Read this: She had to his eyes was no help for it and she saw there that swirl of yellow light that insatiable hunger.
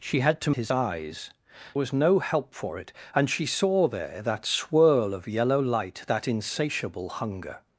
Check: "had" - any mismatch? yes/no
no